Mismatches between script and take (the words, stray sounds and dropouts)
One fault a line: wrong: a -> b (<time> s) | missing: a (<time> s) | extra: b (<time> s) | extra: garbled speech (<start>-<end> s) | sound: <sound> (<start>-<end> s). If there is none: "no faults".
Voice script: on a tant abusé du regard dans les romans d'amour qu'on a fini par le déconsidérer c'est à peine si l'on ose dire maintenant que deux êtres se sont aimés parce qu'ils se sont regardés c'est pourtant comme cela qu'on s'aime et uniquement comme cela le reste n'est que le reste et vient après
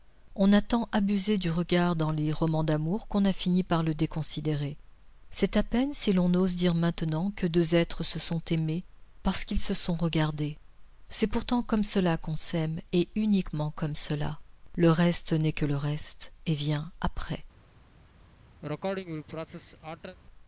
sound: sneeze (18.6-20.2 s)